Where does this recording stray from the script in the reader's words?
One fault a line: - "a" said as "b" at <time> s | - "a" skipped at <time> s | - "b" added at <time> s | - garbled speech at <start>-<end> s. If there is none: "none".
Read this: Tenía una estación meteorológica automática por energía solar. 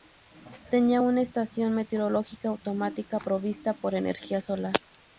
- "provista" added at 3.2 s